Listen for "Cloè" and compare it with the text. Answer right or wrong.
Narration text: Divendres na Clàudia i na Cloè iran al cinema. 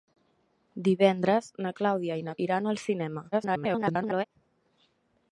wrong